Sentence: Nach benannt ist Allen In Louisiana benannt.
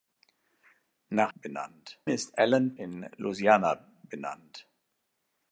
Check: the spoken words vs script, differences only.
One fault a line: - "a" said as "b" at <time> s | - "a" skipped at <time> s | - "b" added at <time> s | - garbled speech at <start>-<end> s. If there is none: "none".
none